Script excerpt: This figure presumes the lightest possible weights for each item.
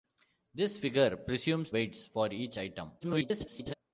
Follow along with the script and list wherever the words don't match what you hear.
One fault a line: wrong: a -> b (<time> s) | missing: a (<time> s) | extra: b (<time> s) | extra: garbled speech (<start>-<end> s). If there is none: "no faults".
missing: the lightest possible (1.7 s)
extra: garbled speech (3.0-3.7 s)